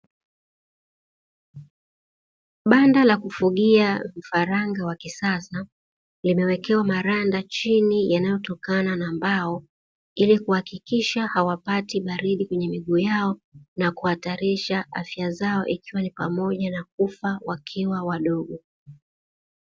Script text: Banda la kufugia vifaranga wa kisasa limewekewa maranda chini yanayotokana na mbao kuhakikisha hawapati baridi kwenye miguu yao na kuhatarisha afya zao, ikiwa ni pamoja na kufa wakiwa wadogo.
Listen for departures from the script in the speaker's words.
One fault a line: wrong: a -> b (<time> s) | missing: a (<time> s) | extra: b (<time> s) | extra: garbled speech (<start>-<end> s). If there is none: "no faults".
extra: ili (10.2 s)